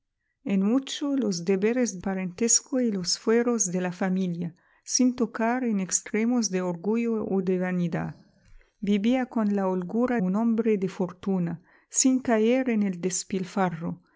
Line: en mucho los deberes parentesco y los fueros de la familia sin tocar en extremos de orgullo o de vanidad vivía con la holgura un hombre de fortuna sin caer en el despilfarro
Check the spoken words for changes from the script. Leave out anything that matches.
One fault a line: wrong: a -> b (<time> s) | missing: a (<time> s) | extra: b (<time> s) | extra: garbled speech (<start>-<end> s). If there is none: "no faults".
no faults